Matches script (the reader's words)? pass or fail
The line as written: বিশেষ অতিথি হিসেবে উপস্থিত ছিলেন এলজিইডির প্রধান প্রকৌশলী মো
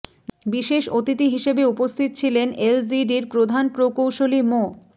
pass